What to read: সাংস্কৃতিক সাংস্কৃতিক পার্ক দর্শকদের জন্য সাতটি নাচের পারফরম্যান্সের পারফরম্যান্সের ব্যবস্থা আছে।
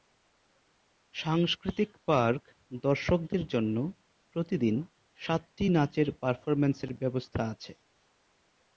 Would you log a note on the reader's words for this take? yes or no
yes